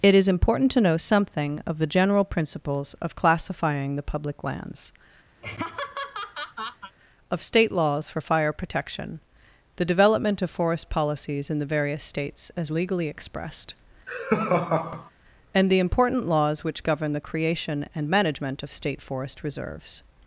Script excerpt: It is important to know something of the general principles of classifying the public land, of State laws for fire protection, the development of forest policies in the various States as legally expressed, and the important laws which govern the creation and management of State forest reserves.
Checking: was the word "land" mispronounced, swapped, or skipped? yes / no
yes